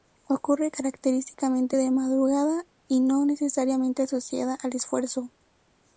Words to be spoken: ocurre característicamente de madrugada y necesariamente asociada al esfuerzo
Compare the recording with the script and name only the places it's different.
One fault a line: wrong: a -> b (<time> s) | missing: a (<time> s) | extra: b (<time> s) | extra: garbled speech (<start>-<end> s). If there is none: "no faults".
extra: no (3.0 s)